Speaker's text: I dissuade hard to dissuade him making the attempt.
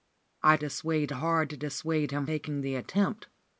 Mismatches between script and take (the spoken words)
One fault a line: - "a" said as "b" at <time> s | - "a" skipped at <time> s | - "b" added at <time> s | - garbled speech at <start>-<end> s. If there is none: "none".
none